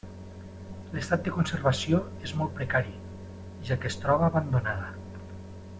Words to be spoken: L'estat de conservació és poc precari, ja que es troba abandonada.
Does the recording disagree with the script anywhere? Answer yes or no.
yes